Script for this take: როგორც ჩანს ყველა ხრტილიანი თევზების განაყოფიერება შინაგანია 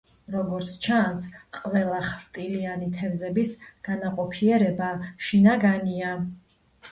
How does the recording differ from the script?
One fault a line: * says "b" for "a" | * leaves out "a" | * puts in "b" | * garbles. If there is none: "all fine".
all fine